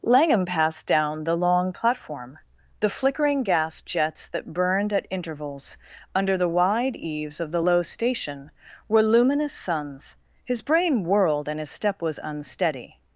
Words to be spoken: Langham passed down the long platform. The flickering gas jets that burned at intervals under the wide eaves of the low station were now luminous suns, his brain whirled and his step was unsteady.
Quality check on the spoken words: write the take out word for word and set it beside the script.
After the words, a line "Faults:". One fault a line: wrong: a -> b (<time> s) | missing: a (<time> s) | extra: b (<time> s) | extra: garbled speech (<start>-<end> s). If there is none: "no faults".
Langham passed down the long platform. The flickering gas jets that burned at intervals under the wide eaves of the low station were luminous suns, his brain whirled and his step was unsteady.
Faults:
missing: now (9.0 s)